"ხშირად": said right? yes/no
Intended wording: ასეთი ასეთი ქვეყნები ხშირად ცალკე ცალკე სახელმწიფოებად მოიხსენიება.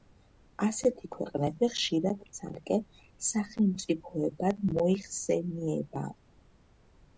yes